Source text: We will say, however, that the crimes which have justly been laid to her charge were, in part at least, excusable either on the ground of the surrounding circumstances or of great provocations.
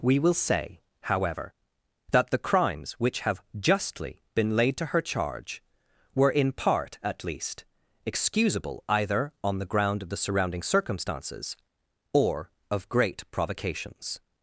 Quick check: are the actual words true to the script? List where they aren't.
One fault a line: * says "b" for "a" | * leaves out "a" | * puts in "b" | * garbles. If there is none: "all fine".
all fine